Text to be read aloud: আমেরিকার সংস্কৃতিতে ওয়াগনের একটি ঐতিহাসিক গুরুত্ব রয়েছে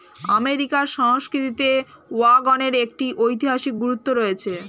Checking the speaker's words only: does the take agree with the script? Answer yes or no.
yes